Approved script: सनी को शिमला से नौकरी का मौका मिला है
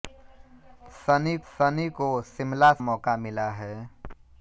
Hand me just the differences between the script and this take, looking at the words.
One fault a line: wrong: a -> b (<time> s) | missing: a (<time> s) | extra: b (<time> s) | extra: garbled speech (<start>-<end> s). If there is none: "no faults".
extra: सनी (1.5 s)
missing: से नौकरी का (2.7 s)